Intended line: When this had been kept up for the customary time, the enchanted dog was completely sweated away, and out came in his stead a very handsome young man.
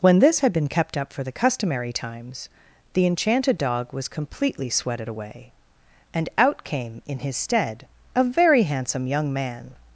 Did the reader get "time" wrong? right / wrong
wrong